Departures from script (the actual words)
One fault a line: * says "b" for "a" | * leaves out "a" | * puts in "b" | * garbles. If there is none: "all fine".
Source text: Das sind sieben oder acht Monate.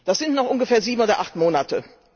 * puts in "noch ungefähr"